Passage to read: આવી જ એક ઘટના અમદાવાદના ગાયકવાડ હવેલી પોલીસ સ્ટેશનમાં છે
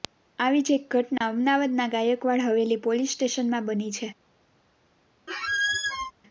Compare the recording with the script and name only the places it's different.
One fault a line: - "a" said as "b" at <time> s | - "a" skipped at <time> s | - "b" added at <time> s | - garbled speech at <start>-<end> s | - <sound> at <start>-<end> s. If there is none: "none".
- dropout at 1.2-1.2 s
- "બની" added at 3.7 s
- squeak at 5.3-6.1 s